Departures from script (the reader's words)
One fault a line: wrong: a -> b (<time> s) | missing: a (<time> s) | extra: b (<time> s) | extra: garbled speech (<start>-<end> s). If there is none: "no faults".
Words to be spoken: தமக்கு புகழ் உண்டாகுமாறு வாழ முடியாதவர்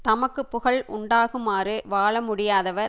no faults